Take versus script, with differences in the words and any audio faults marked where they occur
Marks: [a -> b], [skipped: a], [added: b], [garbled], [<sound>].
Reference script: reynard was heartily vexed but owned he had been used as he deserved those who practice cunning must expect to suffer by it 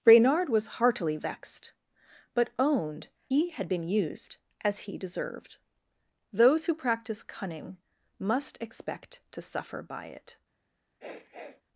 reynard was heartily vexed but owned he had been used as he deserved those who practice cunning must expect to suffer by it [sniff]